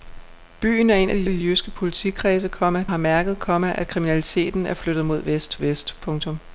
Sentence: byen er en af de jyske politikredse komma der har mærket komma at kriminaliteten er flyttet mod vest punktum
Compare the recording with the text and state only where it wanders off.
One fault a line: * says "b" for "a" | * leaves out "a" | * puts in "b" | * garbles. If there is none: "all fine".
* puts in "de"
* leaves out "der"
* puts in "vest"